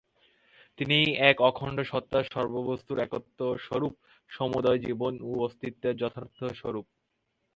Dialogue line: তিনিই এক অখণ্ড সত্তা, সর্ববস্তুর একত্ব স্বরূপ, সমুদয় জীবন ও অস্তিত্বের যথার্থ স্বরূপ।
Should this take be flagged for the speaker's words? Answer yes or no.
no